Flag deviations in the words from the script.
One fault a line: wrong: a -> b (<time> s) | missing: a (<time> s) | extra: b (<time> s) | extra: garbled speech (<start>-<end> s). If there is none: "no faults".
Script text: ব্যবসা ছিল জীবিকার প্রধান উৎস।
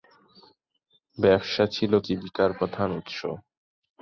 no faults